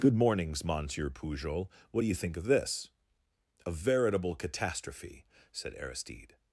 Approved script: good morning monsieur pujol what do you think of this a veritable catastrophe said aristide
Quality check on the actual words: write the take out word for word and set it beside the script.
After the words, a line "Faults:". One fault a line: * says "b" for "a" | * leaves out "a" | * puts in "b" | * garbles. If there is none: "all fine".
good mornings monsieur pujol what do you think of this a veritable catastrophe said aristide
Faults:
* says "mornings" for "morning"